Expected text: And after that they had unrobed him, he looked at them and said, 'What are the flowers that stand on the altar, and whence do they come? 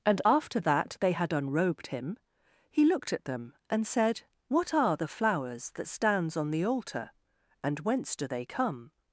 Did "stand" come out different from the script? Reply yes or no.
yes